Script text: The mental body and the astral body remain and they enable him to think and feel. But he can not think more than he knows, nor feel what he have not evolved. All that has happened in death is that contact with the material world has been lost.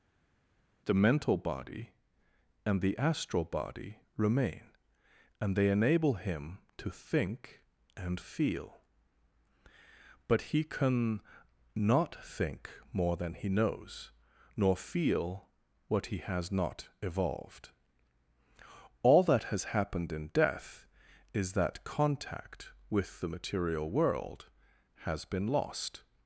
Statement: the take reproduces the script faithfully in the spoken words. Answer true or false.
false